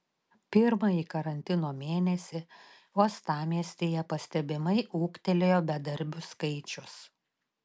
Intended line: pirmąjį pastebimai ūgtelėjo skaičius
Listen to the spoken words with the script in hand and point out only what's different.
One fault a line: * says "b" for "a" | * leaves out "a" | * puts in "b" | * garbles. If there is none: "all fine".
* puts in "karantino mėnesį uostamiestyje"
* puts in "bedarbių"